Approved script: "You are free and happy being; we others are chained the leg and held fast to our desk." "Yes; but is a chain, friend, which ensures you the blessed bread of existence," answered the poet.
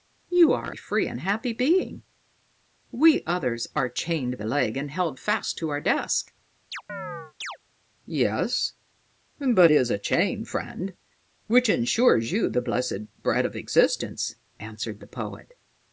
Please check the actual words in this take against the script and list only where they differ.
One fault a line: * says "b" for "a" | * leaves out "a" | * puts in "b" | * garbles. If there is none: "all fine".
all fine